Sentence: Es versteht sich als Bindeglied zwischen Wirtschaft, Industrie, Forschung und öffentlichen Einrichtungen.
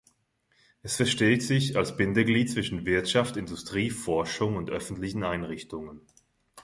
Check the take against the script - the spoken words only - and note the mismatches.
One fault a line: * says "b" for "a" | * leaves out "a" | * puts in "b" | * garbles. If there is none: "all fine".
all fine